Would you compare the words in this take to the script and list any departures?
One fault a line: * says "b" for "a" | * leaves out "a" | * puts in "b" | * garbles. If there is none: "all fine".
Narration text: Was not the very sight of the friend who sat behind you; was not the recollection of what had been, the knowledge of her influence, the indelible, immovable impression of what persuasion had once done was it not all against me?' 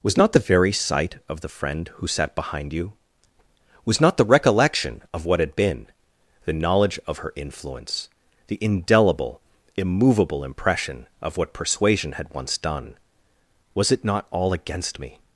all fine